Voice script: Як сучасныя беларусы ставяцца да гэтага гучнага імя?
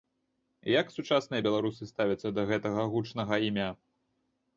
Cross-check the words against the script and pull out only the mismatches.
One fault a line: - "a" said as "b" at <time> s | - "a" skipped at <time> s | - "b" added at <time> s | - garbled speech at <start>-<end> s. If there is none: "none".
none